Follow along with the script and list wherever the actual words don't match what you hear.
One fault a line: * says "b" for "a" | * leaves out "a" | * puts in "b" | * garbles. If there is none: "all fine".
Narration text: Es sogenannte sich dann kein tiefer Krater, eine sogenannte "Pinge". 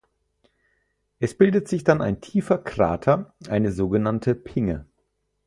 * says "bildet" for "sogenannte"
* says "ein" for "kein"